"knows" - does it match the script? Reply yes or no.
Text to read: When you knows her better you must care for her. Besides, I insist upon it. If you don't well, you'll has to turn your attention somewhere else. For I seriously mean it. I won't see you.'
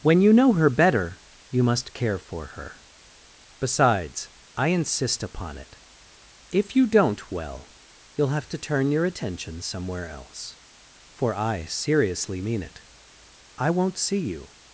no